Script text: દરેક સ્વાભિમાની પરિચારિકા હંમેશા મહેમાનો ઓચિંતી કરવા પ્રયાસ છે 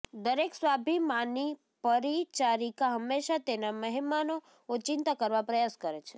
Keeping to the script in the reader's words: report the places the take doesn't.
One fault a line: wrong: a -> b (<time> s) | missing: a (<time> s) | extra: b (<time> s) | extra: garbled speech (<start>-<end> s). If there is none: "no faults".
extra: તેના (3.4 s)
extra: કરે (5.8 s)